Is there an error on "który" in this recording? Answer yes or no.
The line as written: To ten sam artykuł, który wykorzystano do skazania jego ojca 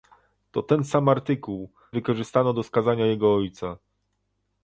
yes